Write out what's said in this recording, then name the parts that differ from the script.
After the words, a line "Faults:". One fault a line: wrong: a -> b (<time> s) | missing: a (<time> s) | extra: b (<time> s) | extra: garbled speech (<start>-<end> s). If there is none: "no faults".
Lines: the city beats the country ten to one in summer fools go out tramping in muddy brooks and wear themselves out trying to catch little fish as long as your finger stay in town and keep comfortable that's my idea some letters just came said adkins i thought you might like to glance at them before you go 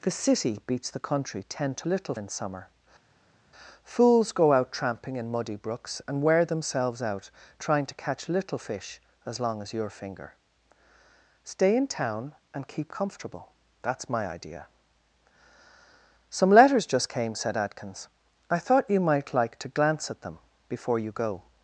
the city beats the country ten to little in summer fools go out tramping in muddy brooks and wear themselves out trying to catch little fish as long as your finger stay in town and keep comfortable that's my idea some letters just came said adkins i thought you might like to glance at them before you go
Faults:
wrong: one -> little (1.8 s)